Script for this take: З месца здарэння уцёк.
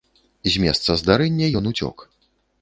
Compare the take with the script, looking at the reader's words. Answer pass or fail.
fail